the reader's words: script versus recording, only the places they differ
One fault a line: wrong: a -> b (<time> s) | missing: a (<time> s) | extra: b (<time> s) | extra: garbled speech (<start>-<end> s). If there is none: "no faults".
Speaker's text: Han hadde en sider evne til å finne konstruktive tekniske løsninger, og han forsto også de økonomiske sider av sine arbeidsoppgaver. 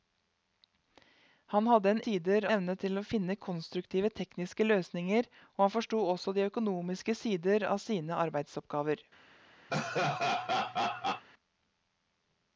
no faults